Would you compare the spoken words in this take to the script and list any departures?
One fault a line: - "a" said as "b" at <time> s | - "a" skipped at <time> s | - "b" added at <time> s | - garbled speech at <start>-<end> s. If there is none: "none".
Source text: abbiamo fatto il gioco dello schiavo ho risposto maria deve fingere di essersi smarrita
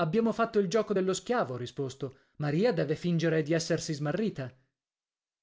none